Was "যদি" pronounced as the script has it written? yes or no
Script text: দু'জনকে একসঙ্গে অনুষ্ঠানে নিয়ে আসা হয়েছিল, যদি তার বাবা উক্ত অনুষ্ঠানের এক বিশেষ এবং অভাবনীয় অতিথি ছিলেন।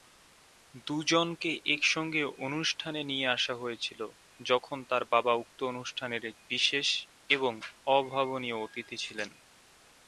no